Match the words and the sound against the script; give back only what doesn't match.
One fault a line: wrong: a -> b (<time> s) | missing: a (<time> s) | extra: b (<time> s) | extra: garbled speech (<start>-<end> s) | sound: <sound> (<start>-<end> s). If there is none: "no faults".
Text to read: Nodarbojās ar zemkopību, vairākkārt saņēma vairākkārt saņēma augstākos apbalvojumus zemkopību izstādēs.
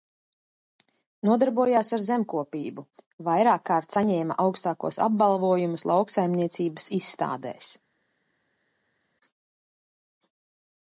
missing: vairākkārt saņēma (4.4 s)
wrong: zemkopību -> lauksaimniecības (5.9 s)